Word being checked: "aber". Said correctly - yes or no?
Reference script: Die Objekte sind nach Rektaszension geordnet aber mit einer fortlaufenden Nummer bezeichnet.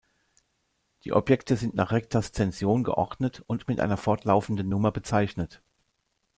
no